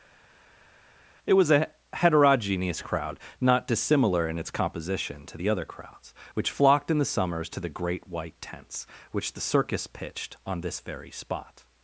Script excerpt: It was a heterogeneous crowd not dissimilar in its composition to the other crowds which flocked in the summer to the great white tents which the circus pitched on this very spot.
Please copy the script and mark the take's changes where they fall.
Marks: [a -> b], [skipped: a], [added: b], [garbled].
It was a heterogeneous crowd not dissimilar in its composition to the other crowds which flocked in the [summer -> summers] to the great white tents which the circus pitched on this very spot.